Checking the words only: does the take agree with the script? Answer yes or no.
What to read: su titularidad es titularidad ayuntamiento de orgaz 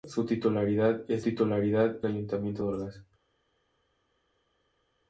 yes